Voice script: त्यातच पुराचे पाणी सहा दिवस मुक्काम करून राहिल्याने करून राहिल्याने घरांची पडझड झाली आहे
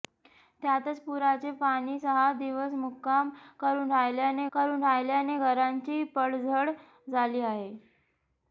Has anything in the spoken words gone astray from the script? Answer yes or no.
no